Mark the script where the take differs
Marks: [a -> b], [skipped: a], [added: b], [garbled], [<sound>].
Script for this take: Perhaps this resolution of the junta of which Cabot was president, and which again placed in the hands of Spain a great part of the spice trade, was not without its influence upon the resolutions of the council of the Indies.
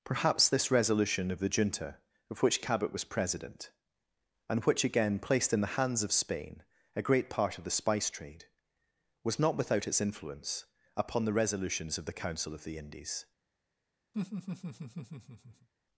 Perhaps this resolution of the junta of which Cabot was president, and which again placed in the hands of Spain a great part of the spice trade, was not without its influence upon the resolutions of the council of the Indies. [laugh]